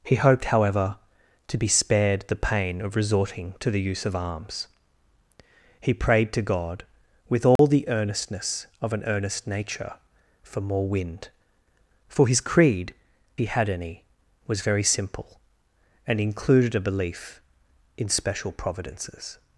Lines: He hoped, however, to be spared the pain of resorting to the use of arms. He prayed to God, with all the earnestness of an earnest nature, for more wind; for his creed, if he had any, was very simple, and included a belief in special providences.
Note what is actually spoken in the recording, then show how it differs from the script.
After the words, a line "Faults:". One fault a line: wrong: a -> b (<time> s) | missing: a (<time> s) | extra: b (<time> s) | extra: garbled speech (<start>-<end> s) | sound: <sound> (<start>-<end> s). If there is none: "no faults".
He hoped, however, to be spared the pain of resorting to the use of arms. He prayed to God, with all the earnestness of an earnest nature, for more wind; for his creed, he had any, was very simple, and included a belief in special providences.
Faults:
sound: dropout (7.6-7.6 s)
missing: if (12.9 s)